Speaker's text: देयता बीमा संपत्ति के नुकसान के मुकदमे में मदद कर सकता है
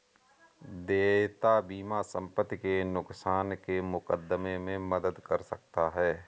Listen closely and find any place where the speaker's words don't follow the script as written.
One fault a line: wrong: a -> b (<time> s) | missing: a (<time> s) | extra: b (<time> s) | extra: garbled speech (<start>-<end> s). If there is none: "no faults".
no faults